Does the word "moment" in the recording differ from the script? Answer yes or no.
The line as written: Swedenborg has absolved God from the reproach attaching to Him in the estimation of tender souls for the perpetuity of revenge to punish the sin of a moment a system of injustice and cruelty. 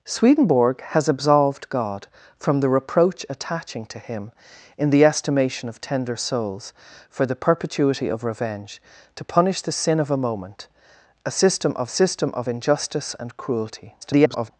no